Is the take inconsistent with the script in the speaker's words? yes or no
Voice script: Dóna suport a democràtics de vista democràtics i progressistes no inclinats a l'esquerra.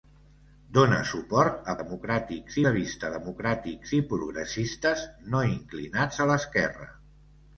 no